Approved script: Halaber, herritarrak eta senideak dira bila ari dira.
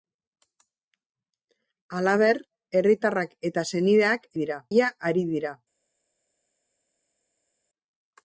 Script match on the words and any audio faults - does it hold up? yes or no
yes